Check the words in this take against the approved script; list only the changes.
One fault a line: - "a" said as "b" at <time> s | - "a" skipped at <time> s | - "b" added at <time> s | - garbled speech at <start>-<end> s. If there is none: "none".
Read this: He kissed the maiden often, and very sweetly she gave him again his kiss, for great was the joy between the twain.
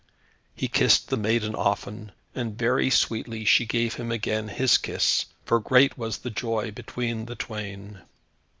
none